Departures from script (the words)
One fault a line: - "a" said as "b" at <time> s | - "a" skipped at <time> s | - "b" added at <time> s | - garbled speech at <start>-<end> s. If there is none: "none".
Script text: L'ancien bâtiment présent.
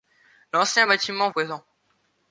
none